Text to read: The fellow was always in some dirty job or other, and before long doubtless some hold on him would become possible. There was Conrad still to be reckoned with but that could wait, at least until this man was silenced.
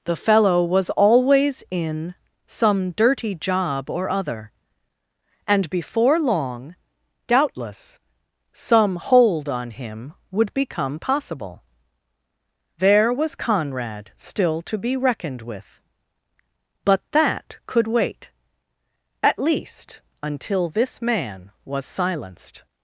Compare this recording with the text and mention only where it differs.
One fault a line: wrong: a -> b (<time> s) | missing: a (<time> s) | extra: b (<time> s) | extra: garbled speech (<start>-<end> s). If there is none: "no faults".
no faults